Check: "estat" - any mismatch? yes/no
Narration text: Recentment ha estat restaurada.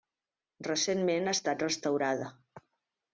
no